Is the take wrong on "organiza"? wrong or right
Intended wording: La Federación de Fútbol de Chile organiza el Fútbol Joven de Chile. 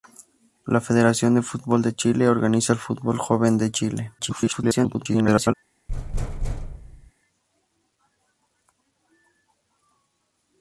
right